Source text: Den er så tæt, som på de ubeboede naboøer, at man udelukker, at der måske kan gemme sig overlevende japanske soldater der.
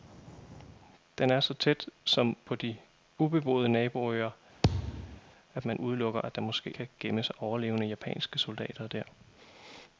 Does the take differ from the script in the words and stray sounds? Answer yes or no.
yes